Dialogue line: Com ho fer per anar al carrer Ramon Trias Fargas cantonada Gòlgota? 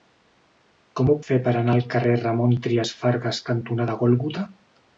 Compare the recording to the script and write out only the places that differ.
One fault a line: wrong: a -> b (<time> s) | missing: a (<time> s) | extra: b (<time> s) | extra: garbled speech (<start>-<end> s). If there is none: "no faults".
no faults